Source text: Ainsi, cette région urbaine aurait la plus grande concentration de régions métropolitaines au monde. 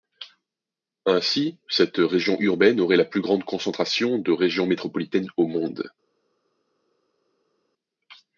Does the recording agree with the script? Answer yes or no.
yes